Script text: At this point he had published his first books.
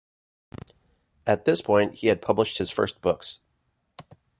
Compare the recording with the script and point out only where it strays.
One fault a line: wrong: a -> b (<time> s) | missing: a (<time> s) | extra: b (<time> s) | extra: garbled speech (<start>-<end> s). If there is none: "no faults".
no faults